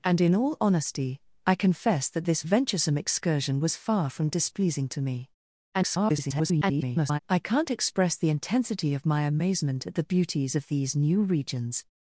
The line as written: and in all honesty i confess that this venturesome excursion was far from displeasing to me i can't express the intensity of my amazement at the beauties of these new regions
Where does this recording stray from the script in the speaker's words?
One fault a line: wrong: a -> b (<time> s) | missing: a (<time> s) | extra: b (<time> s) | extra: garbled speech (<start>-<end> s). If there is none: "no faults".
extra: garbled speech (5.7-7.2 s)